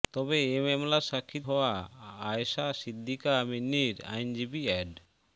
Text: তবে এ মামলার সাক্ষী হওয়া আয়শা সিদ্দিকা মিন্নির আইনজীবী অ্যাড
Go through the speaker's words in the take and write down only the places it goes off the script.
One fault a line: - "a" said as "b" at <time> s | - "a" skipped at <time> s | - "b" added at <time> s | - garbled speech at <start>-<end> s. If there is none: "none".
none